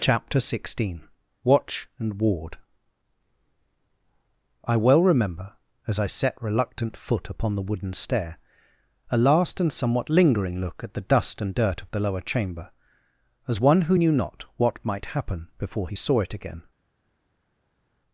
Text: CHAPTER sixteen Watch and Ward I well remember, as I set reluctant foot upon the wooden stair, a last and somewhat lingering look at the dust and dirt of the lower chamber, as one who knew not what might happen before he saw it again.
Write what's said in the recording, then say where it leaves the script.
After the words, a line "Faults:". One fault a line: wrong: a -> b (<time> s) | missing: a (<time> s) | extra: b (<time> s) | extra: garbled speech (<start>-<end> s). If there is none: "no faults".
CHAPTER sixteen Watch and Ward I well remember, as I set reluctant foot upon the wooden stair, a last and somewhat lingering look at the dust and dirt of the lower chamber, as one who knew not what might happen before he saw it again.
Faults:
no faults